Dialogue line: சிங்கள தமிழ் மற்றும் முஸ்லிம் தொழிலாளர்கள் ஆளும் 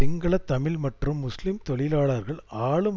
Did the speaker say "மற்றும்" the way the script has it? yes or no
yes